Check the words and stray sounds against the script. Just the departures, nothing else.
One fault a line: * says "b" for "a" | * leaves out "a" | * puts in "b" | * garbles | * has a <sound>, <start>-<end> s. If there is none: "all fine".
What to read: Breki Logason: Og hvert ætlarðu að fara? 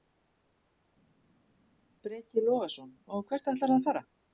all fine